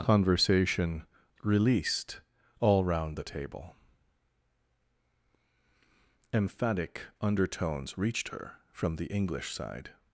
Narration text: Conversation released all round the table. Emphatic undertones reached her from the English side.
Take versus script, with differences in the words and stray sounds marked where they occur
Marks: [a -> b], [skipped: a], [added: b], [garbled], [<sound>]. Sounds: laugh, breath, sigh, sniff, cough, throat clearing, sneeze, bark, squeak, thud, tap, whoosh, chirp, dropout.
Conversation released all round the table. Emphatic undertones reached her from the English side.